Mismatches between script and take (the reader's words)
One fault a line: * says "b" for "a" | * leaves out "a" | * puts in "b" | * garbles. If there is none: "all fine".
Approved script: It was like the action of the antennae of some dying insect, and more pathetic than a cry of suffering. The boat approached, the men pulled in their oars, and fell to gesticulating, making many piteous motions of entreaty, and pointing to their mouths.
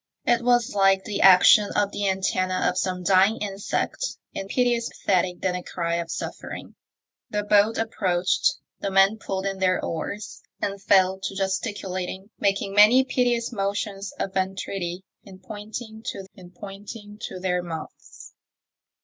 * says "piteous" for "more"
* puts in "and pointing to"